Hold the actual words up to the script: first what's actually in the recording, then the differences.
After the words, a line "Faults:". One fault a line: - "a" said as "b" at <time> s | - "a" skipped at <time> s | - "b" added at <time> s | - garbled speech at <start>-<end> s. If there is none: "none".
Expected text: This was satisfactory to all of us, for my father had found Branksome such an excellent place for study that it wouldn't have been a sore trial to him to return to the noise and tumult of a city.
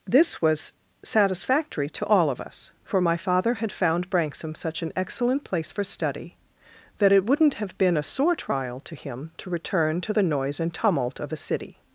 This was satisfactory to all of us, for my father had found Branksome such an excellent place for study that it wouldn't have been a sore trial to him to return to the noise and tumult of a city.
Faults:
none